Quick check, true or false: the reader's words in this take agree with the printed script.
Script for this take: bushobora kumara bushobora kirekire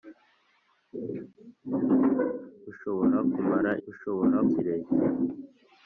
true